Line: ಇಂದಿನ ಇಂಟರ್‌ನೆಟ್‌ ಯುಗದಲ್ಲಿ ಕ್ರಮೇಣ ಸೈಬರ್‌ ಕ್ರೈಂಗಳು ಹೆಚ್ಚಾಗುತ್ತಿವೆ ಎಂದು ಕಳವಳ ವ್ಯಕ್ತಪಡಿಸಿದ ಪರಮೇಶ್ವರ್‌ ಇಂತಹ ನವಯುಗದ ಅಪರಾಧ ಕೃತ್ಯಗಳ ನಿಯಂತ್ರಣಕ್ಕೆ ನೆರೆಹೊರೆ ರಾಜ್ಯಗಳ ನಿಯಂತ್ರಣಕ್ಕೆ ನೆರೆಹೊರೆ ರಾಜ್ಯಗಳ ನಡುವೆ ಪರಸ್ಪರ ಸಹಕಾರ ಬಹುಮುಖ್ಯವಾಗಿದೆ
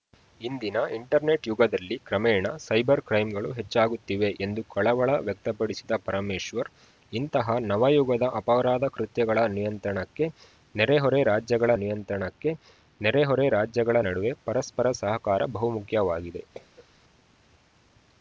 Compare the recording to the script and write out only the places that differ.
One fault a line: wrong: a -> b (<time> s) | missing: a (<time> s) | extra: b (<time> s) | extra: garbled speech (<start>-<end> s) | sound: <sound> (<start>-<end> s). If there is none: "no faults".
sound: cough (16.5-16.9 s)